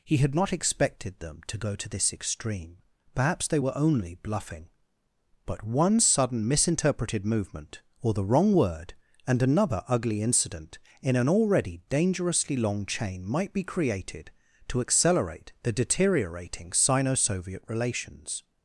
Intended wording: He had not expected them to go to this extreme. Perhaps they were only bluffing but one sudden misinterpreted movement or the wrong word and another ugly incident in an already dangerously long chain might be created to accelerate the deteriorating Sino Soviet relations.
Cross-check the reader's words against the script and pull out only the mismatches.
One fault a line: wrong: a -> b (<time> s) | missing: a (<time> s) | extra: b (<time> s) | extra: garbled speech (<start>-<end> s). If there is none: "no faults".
no faults